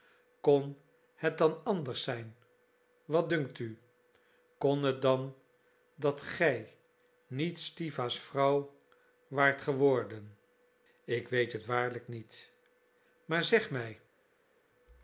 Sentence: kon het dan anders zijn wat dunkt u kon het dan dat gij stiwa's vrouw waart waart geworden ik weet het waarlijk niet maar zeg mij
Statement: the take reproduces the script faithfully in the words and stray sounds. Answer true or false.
false